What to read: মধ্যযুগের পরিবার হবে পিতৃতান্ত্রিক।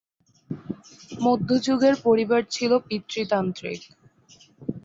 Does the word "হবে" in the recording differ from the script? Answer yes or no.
yes